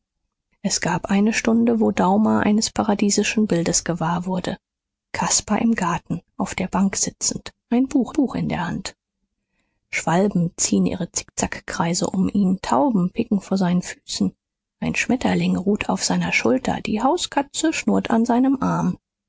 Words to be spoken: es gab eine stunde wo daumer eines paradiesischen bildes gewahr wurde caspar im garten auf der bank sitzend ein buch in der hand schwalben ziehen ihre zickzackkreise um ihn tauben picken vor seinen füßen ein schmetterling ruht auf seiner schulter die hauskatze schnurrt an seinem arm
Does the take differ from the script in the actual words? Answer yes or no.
yes